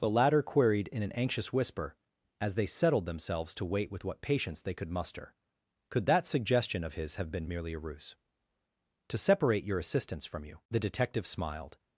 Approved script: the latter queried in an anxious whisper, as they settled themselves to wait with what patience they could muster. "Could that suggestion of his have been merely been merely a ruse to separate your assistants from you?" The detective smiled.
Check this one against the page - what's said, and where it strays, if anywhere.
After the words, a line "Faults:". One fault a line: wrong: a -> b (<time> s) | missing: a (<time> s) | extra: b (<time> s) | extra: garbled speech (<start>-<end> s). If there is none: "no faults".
the latter queried in an anxious whisper, as they settled themselves to wait with what patience they could muster. "Could that suggestion of his have been merely a ruse to separate your assistants from you?" The detective smiled.
Faults:
missing: been merely (7.7 s)